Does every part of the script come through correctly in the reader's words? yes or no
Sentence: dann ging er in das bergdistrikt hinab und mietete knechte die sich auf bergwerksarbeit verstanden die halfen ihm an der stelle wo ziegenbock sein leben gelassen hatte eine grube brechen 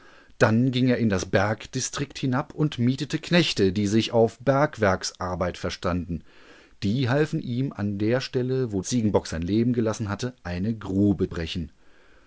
yes